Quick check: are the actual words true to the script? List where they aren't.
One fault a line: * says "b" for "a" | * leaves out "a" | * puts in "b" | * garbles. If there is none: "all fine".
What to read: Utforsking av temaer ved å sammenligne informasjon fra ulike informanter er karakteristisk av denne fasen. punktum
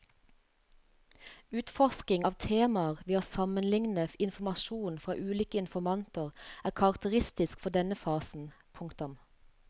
* says "for" for "av"